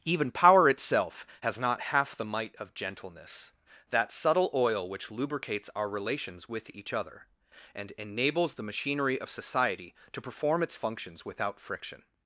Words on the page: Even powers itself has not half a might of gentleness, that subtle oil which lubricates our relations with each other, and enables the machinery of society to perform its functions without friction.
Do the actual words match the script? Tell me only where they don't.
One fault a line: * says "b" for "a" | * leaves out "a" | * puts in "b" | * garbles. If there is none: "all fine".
* says "power" for "powers"
* says "the" for "a"